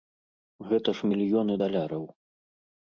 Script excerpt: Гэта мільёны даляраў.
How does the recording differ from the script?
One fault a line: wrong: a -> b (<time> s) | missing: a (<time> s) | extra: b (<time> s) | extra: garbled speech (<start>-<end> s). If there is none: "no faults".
extra: ж (1.0 s)